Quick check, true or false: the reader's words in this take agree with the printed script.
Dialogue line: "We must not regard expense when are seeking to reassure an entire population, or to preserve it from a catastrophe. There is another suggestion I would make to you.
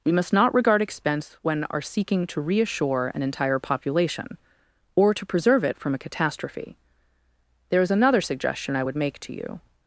true